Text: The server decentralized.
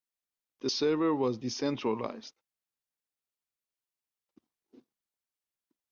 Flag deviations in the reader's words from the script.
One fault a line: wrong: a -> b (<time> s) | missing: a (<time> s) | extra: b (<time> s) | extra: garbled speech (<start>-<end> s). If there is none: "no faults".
extra: was (1.1 s)